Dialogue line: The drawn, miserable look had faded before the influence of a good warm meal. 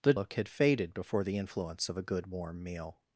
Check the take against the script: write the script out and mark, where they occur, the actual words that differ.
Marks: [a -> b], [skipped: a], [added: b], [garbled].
The [skipped: drawn, miserable] look had faded before the influence of a good warm meal.